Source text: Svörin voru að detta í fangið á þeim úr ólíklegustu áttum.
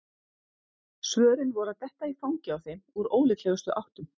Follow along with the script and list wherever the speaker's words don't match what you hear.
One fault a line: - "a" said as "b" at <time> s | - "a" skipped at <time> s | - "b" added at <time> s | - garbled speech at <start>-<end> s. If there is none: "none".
none